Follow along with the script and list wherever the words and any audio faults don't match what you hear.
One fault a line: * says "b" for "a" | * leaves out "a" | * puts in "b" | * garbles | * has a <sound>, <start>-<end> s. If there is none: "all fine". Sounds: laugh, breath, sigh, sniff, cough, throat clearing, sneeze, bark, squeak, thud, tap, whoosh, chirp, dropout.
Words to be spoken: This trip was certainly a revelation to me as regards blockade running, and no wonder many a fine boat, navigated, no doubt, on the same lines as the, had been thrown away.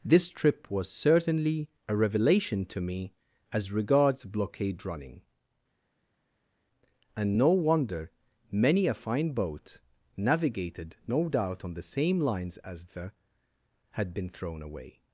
all fine